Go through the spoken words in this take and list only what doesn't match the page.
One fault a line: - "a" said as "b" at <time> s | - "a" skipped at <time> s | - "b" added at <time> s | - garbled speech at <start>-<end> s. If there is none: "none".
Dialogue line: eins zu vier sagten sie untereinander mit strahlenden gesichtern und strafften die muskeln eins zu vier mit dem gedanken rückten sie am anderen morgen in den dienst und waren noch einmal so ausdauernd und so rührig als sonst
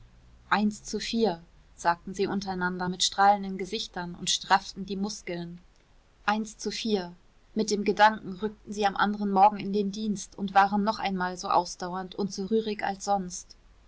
none